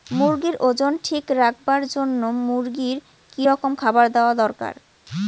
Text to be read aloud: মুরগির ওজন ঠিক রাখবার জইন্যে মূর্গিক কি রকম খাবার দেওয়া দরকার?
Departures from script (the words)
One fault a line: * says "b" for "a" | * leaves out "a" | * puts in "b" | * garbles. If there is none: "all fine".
all fine